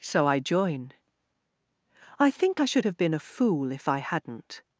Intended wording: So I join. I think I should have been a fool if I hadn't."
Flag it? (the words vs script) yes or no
no